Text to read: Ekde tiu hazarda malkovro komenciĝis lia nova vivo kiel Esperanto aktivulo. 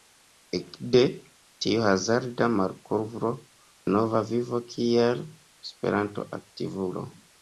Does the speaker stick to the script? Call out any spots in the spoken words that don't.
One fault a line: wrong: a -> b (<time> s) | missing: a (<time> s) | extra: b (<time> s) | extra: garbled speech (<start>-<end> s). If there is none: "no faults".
missing: komenciĝis lia (3.3 s)